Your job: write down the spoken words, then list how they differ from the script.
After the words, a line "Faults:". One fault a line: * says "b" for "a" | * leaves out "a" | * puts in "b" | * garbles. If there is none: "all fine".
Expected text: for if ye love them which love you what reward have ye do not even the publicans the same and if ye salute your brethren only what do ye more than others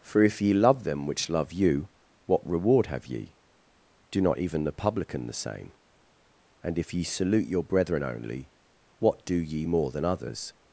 for if ye love them which love you what reward have ye do not even the publican the same and if ye salute your brethren only what do ye more than others
Faults:
* says "publican" for "publicans"